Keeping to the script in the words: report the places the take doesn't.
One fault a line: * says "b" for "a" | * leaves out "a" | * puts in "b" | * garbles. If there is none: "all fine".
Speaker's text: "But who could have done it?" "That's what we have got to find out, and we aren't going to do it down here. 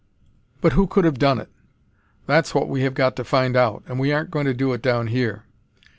all fine